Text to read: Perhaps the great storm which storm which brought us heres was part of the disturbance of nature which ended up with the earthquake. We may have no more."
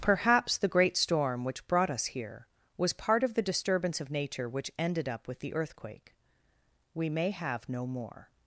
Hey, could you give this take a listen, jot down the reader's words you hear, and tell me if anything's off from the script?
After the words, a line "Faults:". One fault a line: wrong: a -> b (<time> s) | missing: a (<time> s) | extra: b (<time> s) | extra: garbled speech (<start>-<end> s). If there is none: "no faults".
Perhaps the great storm which brought us here was part of the disturbance of nature which ended up with the earthquake. We may have no more."
Faults:
missing: storm which (1.7 s)
wrong: heres -> here (2.1 s)